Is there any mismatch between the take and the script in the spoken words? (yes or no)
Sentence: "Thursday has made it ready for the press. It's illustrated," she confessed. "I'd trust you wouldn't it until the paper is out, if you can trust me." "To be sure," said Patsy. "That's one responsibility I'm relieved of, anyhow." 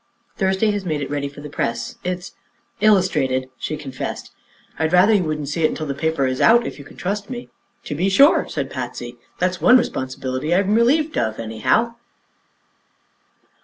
yes